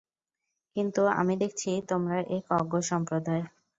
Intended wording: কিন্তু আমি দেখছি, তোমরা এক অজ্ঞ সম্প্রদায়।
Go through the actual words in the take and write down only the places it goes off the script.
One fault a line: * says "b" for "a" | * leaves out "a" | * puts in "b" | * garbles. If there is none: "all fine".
all fine